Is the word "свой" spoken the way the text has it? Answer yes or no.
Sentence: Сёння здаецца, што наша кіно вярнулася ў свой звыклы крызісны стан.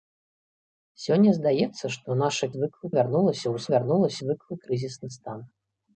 no